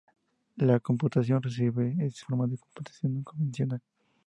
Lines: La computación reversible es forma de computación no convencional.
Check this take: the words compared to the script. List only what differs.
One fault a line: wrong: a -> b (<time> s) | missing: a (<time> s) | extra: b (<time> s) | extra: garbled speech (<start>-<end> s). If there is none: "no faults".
no faults